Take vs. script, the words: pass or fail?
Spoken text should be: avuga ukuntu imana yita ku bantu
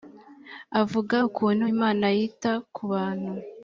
pass